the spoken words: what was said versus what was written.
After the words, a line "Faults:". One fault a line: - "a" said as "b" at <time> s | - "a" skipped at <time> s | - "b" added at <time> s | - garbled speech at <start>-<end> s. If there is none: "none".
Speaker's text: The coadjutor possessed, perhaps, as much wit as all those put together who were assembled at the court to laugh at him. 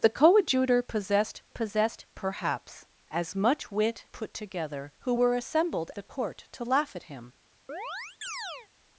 The coadjutor possessed possessed, perhaps, as much wit put together who were assembled the court to laugh at him.
Faults:
- "possessed" added at 1.5 s
- "as all those" skipped at 4.1 s
- "at" skipped at 5.9 s